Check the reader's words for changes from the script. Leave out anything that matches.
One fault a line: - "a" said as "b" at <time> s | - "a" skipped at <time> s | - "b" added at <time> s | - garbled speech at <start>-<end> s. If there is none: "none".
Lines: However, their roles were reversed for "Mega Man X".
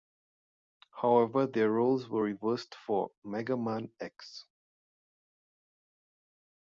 none